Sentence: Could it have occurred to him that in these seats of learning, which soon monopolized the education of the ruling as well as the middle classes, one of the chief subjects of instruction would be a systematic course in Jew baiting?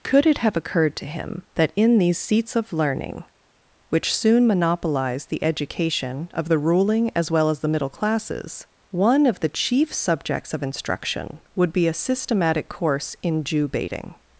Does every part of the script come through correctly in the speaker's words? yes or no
yes